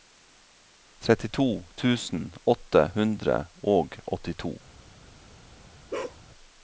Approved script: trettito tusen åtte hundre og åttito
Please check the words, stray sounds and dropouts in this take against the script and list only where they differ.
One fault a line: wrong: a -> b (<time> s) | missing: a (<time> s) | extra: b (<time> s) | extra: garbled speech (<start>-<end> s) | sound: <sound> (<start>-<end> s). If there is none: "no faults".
sound: bark (5.9-6.2 s)